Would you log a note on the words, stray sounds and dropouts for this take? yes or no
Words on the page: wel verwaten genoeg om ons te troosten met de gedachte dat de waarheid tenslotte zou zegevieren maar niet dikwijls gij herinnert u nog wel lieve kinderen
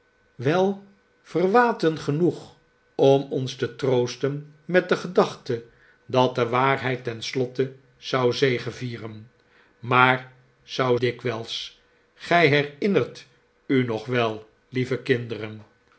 yes